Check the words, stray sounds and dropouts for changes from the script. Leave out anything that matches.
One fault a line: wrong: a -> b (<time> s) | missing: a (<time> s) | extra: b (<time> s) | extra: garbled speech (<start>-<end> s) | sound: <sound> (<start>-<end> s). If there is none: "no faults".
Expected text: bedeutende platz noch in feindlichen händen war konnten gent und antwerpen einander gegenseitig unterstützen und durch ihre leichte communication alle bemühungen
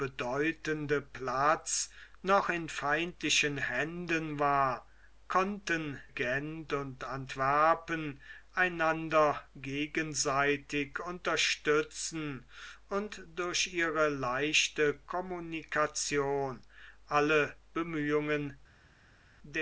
no faults